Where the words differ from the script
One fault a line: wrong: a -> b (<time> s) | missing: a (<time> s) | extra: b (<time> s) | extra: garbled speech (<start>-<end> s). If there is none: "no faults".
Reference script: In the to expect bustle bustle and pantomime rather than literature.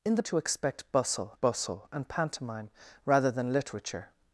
no faults